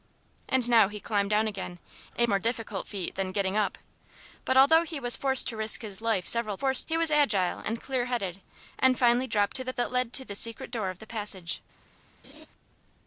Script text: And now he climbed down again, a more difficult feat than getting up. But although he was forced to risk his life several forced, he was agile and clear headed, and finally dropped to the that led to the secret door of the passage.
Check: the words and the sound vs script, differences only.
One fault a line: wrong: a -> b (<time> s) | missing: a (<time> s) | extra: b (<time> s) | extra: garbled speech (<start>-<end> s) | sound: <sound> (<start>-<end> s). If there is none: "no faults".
sound: laugh (12.2-12.5 s)